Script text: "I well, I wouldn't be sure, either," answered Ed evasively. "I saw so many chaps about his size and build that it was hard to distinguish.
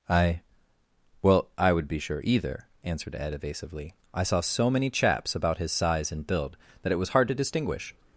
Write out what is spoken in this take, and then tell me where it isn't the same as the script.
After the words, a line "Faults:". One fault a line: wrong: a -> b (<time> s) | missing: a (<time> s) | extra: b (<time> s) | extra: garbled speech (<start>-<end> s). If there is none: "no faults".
"I well, I would be sure, either," answered Ed evasively. "I saw so many chaps about his size and build that it was hard to distinguish.
Faults:
wrong: wouldn't -> would (1.7 s)